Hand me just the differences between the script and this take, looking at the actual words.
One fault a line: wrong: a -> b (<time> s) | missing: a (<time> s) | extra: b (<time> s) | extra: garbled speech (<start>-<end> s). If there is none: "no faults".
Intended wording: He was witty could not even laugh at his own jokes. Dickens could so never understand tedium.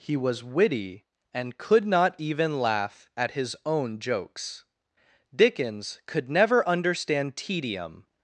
extra: and (1.3 s)
missing: so (6.3 s)